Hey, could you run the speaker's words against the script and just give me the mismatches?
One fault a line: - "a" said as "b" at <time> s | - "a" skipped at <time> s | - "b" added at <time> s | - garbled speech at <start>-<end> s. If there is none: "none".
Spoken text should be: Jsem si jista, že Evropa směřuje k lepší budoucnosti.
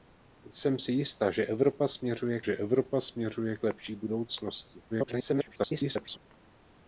- "že Evropa směřuje" added at 2.4 s
- garbled speech at 4.9-6.2 s